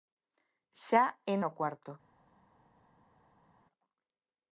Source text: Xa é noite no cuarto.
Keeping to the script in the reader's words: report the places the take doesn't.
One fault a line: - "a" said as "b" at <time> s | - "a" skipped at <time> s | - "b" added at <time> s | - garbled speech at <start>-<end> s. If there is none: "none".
- "noite" skipped at 1.4 s